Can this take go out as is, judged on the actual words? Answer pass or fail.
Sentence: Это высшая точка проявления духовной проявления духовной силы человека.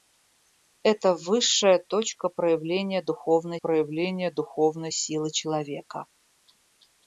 pass